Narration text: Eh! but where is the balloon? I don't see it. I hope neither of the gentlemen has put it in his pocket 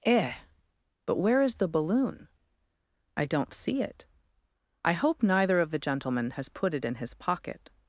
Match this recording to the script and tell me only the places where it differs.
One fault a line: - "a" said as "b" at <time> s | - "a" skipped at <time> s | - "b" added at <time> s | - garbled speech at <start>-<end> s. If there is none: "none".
none